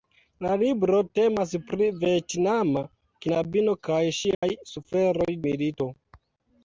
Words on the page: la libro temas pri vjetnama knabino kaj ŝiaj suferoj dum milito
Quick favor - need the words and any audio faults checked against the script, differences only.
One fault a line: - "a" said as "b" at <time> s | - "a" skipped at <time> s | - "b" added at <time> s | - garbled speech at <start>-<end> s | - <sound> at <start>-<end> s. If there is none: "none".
- dropout at 4.3-4.4 s
- "dum" skipped at 5.3 s